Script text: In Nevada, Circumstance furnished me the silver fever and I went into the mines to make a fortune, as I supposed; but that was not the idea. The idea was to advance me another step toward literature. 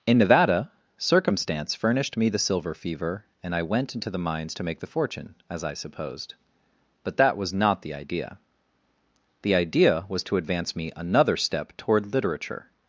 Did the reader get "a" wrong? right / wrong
wrong